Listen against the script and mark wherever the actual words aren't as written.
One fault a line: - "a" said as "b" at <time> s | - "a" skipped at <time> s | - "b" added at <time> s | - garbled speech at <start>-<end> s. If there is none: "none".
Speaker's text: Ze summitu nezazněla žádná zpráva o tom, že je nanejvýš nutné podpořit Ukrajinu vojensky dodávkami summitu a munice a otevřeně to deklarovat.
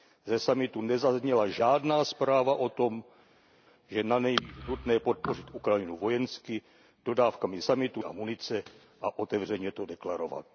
none